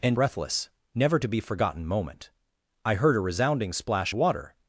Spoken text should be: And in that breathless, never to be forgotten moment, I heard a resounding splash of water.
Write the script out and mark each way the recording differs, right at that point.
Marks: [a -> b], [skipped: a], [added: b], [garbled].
And [skipped: in that] breathless, never to be forgotten moment, I heard a resounding splash [skipped: of] water.